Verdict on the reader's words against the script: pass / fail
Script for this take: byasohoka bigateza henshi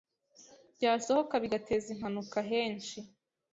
fail